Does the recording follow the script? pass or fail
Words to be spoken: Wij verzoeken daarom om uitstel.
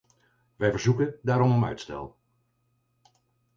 pass